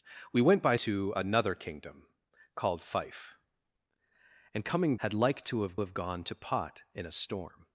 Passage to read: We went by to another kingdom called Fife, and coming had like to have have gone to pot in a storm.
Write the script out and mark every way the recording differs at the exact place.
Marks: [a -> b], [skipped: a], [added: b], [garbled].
We went by to another kingdom called Fife, and coming had like to have have gone to pot in a storm.